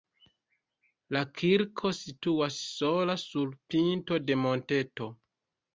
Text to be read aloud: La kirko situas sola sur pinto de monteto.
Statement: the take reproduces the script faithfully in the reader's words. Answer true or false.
true